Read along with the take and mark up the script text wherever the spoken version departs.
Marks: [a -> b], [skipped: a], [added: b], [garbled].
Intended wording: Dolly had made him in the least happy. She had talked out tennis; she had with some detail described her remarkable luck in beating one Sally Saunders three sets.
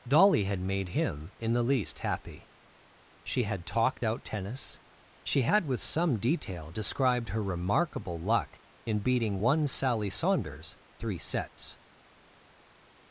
Dolly had made him in the least happy. She had talked out tennis; she had with some detail described her remarkable luck in beating one Sally Saunders three sets.